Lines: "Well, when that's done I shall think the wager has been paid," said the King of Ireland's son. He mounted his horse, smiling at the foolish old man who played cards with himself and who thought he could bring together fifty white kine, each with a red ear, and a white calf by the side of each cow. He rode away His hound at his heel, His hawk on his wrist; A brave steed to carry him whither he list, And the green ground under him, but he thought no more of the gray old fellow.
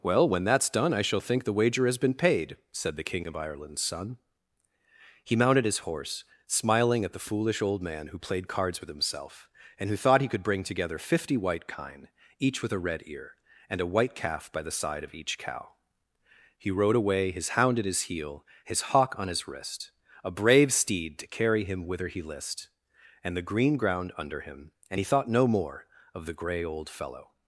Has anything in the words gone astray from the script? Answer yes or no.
yes